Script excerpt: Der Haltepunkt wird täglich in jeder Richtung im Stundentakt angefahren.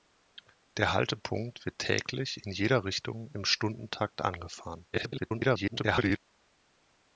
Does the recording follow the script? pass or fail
fail